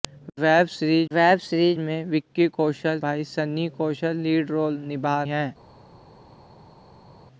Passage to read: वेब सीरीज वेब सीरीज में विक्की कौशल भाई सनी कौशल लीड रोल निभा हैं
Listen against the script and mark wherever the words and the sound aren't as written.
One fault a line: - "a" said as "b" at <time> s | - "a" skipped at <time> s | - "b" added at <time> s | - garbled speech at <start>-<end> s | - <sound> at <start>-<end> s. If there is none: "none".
none